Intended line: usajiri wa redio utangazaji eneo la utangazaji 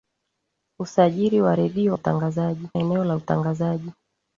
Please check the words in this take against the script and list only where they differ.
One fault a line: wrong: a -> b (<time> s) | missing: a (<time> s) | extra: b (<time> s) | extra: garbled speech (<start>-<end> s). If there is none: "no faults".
no faults